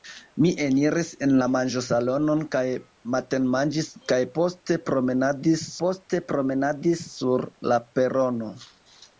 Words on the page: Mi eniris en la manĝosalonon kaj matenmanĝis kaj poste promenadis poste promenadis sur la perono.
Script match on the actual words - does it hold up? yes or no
yes